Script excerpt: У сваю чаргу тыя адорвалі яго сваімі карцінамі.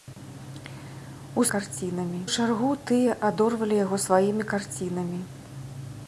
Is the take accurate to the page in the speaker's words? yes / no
no